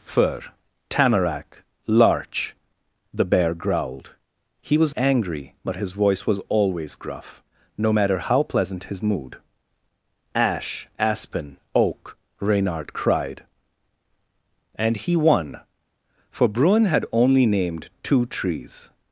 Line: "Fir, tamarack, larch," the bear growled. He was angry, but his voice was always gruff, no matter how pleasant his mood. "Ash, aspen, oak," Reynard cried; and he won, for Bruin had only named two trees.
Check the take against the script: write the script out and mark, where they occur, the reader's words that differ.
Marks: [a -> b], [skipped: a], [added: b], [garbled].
"Fir, tamarack, larch," the bear growled. He was angry, but his voice was always gruff, no matter how pleasant his mood. "Ash, aspen, oak," Reynard cried; and he won, for Bruin had only named two trees.